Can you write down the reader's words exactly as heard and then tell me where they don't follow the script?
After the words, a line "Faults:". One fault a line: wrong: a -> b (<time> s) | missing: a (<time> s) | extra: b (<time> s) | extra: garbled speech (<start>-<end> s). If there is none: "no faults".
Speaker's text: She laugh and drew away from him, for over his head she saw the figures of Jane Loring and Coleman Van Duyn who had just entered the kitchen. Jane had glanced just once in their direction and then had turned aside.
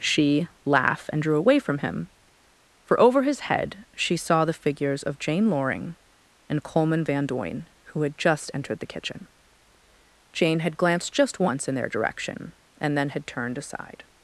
She laugh and drew away from him, for over his head she saw the figures of Jane Loring and Coleman Van Duyn who had just entered the kitchen. Jane had glanced just once in their direction and then had turned aside.
Faults:
no faults